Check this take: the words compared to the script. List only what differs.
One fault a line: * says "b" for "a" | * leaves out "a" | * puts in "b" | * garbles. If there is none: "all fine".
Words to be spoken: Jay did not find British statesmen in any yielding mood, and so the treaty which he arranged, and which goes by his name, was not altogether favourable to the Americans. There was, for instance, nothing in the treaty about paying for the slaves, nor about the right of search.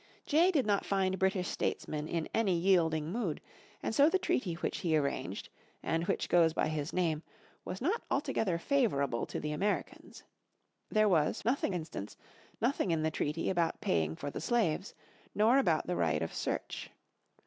* says "nothing" for "for"